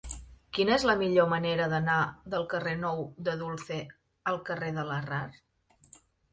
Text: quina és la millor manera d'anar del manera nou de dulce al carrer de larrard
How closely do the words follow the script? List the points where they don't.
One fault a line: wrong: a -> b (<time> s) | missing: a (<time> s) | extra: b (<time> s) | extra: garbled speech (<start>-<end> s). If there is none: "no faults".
wrong: manera -> carrer (2.5 s)